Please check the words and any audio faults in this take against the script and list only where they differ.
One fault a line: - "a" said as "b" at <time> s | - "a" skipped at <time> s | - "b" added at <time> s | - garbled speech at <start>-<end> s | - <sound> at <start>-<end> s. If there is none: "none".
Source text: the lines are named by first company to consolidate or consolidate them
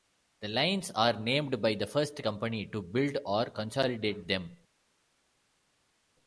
- "the" added at 1.8 s
- "consolidate" said as "build" at 2.8 s